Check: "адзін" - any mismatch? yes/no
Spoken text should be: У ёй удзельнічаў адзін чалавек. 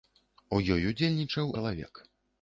yes